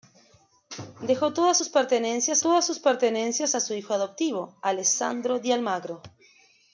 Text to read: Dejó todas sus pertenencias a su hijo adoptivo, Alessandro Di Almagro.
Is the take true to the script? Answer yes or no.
no